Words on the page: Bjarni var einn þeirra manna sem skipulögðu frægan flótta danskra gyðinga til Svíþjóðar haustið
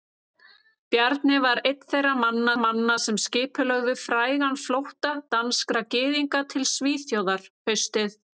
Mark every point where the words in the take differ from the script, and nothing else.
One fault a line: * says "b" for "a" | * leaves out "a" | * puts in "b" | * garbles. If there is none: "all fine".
* puts in "manna"